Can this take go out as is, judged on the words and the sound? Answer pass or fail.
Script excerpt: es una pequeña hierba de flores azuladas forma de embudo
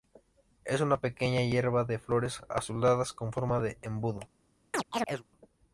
fail